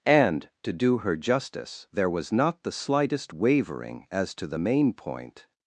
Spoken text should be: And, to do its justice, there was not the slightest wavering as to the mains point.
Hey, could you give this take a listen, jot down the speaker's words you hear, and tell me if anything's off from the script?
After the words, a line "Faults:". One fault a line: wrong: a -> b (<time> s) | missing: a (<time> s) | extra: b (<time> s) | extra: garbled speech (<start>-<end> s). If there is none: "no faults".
And, to do her justice, there was not the slightest wavering as to the main point.
Faults:
wrong: its -> her (1.0 s)
wrong: mains -> main (4.6 s)